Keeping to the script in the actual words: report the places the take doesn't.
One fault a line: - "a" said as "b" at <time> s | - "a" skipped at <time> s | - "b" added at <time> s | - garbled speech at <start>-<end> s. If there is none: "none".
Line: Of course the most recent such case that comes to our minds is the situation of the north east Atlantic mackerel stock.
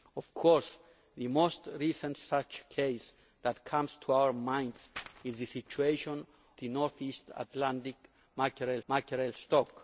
- "of" skipped at 6.2 s
- "mackerel" added at 8.9 s